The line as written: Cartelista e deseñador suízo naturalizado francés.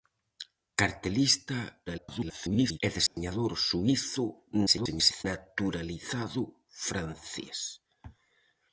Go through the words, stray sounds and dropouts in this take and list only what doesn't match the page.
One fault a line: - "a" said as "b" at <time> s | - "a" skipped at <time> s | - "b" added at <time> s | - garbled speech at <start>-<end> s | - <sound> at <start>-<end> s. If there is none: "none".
- garbled speech at 1.9-2.8 s
- dropout at 3.1-3.2 s
- garbled speech at 4.7-5.2 s